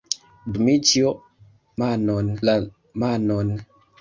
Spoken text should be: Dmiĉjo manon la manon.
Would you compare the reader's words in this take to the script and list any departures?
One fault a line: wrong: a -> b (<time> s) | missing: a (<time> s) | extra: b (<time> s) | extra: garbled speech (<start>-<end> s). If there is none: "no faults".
no faults